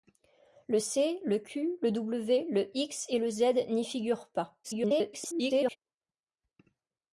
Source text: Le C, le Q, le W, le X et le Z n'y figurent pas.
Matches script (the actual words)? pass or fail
fail